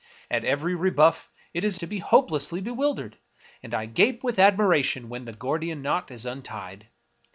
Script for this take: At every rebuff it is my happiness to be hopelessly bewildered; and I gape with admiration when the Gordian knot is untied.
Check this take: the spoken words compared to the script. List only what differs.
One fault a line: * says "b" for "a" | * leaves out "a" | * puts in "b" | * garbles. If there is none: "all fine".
* leaves out "my happiness"